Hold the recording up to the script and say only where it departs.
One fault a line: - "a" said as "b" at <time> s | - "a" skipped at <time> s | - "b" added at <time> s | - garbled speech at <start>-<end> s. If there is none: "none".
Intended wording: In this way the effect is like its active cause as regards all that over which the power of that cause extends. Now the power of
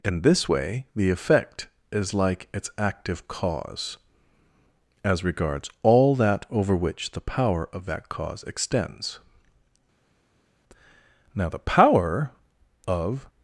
none